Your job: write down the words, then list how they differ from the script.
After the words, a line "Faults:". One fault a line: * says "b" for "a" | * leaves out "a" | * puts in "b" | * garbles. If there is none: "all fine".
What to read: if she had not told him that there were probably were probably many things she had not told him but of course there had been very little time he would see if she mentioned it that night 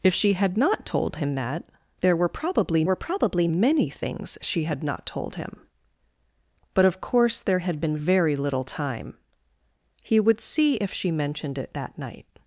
if she had not told him that there were probably were probably many things she had not told him but of course there had been very little time he would see if she mentioned it that night
Faults:
all fine